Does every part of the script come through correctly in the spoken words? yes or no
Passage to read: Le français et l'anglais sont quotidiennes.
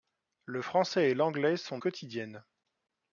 yes